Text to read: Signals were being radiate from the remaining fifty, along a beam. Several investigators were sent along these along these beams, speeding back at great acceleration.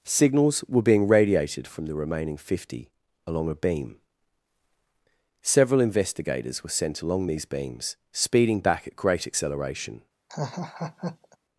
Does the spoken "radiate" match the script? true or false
false